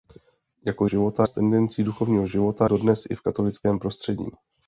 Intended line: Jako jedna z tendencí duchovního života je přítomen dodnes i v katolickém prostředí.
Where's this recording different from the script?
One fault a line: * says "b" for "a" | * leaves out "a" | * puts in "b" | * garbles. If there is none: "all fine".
* says "života" for "jedna"
* leaves out "je přítomen"